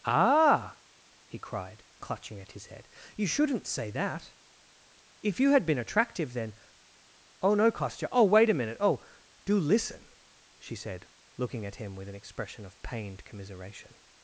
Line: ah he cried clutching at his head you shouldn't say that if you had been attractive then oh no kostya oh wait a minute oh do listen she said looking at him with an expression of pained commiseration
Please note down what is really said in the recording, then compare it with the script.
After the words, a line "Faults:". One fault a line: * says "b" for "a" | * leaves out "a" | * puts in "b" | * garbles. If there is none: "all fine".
ah he cried clutching at his head you shouldn't say that if you had been attractive then oh no kostya oh wait a minute oh do listen she said looking at him with an expression of pained commiseration
Faults:
all fine